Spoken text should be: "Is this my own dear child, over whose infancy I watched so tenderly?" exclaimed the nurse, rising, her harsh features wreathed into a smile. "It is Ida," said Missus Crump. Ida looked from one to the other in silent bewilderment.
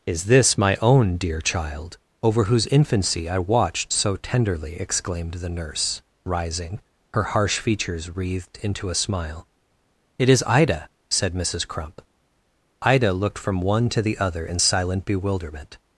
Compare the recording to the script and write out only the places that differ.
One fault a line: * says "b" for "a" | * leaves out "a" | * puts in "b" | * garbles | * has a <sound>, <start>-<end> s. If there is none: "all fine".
all fine